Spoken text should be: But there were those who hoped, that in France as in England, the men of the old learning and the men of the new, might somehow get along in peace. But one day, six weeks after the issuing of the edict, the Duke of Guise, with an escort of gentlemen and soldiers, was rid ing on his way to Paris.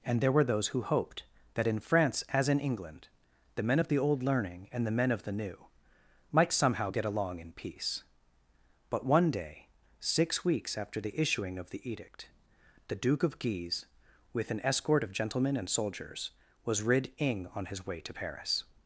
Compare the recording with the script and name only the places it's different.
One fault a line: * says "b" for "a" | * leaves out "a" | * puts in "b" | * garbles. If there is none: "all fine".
* says "And" for "But"